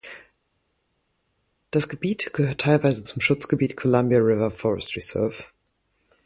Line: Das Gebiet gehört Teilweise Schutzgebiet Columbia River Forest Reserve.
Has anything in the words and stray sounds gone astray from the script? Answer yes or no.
yes